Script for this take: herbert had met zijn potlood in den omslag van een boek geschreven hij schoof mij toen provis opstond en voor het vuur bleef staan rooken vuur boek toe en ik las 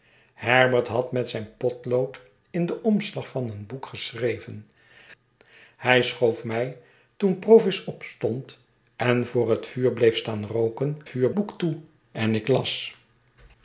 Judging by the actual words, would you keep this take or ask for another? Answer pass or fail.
pass